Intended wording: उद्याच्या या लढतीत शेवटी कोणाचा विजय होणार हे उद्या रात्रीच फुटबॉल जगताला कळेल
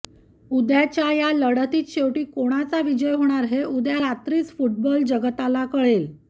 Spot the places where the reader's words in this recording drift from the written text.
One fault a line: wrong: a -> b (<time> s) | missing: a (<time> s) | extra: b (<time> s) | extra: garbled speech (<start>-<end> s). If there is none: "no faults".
no faults